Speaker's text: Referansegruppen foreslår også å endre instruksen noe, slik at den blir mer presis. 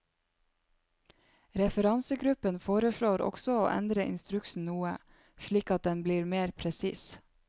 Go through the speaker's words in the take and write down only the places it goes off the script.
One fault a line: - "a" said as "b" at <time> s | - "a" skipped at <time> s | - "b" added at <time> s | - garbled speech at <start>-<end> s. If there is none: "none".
none